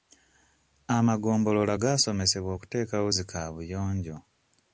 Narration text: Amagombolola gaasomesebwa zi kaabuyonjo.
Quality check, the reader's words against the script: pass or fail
fail